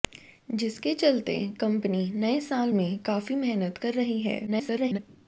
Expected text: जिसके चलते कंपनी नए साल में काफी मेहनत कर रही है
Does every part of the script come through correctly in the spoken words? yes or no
no